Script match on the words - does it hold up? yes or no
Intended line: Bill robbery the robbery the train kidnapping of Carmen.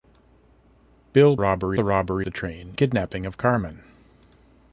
yes